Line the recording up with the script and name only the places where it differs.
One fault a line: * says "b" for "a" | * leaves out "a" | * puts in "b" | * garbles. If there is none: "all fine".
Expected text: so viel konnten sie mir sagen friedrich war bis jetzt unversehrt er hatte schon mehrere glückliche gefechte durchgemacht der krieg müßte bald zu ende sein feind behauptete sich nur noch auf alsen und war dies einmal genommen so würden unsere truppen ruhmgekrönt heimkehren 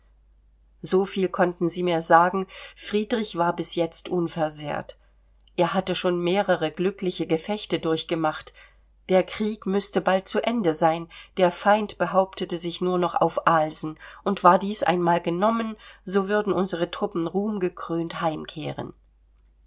* puts in "der"